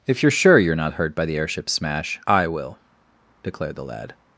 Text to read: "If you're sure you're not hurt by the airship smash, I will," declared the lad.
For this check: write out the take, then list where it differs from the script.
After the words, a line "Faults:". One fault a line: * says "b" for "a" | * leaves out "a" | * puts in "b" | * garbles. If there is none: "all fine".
"If you're sure you're not hurt by the airship smash, I will," declared the lad.
Faults:
all fine